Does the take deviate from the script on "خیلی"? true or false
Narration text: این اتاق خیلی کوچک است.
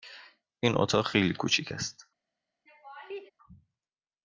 false